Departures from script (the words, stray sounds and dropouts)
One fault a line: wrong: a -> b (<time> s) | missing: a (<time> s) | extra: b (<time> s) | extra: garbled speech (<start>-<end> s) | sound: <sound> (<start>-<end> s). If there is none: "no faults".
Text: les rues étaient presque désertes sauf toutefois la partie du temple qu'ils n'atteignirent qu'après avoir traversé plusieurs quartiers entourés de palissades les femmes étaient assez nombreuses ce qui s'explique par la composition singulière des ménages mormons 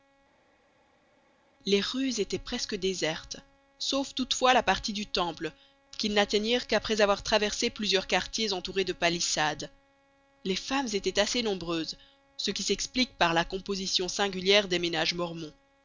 no faults